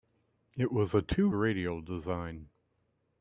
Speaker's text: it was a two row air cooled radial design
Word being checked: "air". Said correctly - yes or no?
no